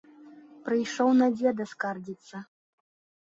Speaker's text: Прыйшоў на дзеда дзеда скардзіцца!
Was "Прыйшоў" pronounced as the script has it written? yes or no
yes